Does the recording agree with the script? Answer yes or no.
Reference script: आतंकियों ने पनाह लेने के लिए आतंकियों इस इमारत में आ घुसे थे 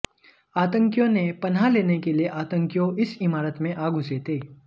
yes